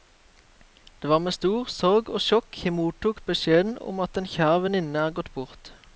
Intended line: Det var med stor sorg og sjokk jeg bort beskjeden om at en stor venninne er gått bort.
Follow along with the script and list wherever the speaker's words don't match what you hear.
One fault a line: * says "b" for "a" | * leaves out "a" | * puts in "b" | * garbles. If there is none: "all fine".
* says "mottok" for "bort"
* says "kjær" for "stor"